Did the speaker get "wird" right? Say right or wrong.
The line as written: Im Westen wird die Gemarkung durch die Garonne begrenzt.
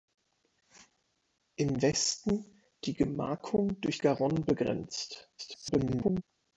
wrong